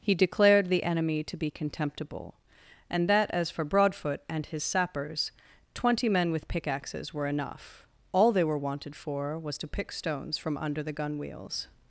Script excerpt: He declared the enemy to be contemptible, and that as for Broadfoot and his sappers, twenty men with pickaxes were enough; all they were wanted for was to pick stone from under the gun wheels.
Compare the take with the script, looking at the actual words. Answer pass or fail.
fail